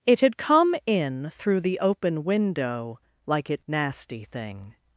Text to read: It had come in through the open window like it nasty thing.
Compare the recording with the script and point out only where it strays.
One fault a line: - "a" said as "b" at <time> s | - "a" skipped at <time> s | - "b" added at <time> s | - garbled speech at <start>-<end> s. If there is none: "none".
none